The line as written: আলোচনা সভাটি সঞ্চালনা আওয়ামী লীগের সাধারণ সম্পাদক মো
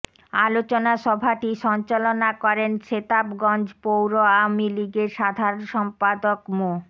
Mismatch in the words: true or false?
true